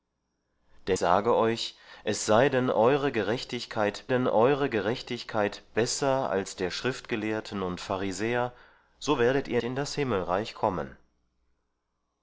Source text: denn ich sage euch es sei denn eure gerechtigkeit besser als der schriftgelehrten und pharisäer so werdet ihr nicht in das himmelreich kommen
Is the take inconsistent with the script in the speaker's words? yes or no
yes